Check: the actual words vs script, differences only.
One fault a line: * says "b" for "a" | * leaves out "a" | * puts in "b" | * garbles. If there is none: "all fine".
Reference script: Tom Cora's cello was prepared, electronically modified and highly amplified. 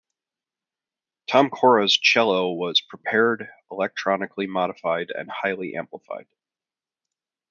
all fine